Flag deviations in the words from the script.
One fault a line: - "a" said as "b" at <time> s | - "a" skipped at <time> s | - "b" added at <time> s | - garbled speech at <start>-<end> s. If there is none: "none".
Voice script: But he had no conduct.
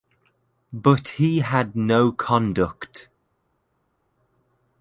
none